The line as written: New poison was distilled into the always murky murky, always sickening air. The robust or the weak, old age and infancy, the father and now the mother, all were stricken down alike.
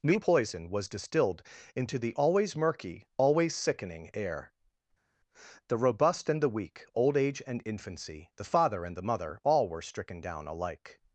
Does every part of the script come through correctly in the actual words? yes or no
no